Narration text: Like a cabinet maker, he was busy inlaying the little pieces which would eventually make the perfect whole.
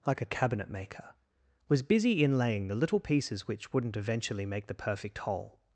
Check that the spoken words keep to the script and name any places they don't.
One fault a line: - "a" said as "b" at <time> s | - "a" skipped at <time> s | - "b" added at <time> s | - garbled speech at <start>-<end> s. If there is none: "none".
- "he" skipped at 1.1 s
- "would" said as "wouldn't" at 3.7 s